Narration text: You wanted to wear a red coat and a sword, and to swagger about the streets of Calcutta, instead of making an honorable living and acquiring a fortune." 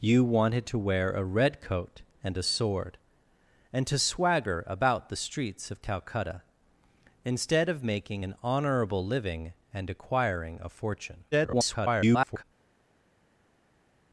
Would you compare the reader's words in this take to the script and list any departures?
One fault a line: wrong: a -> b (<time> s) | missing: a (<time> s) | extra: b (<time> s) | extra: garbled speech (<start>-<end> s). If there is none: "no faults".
extra: garbled speech (11.3-12.4 s)